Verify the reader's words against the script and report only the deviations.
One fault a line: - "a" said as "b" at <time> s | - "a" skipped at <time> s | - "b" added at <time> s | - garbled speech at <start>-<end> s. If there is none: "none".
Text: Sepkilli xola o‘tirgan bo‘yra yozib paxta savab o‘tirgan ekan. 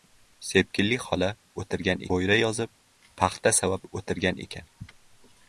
none